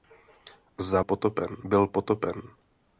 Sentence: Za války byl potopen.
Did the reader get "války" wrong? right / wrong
wrong